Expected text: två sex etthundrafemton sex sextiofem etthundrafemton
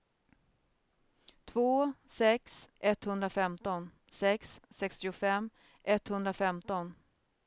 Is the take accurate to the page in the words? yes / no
yes